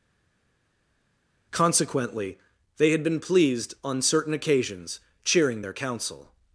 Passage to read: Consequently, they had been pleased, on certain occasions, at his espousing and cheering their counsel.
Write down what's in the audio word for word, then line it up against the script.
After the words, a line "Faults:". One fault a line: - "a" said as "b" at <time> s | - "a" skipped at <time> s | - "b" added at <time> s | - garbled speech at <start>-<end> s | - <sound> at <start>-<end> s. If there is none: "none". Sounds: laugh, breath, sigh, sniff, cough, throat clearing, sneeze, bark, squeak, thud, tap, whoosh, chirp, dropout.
Consequently, they had been pleased, on certain occasions, cheering their counsel.
Faults:
- "at his espousing and" skipped at 5.0 s